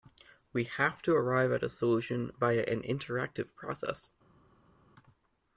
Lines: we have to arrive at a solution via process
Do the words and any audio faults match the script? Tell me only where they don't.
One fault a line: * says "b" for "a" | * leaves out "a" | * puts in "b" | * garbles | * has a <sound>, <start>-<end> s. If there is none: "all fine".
* puts in "an interactive"